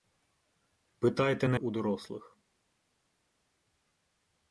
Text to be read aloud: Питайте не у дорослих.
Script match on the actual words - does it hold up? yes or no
yes